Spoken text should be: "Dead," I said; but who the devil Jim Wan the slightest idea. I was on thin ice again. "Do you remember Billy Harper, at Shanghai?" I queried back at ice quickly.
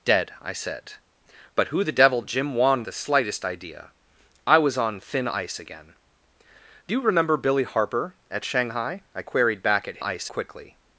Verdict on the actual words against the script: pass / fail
pass